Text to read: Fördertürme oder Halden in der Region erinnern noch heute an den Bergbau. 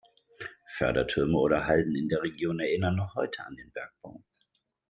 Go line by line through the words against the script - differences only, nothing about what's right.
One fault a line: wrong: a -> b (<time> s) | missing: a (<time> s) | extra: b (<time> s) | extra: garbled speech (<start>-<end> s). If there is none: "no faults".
no faults